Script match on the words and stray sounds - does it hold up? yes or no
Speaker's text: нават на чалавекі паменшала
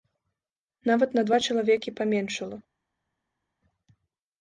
no